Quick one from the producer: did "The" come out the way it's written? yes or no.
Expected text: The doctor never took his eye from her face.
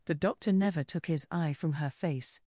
yes